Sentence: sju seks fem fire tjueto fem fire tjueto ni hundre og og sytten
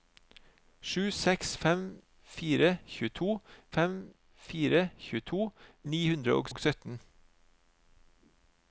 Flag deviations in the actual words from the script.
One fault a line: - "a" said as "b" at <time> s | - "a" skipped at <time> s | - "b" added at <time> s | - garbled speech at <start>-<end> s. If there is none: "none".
none